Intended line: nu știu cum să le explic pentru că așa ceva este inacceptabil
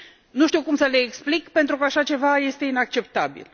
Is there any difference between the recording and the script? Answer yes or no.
no